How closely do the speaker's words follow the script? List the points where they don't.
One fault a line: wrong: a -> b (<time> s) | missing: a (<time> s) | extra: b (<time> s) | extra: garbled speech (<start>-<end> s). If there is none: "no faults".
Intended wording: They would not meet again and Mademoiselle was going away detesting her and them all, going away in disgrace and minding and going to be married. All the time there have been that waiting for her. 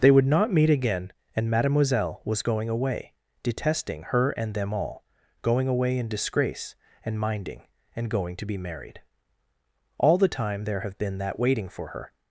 no faults